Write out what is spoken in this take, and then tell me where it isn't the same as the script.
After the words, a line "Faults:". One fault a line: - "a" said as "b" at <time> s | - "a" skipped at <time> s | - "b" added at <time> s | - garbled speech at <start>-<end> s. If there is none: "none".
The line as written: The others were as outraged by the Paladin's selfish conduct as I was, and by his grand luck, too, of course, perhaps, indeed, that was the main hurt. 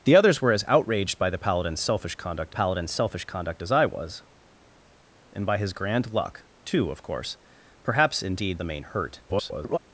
The others were as outraged by the Paladin's selfish conduct Paladin's selfish conduct as I was, and by his grand luck, too, of course, perhaps, indeed, the main hurt. [garbled]
Faults:
- "Paladin's selfish conduct" added at 2.5 s
- "that was" skipped at 8.6 s
- garbled speech at 9.3-9.8 s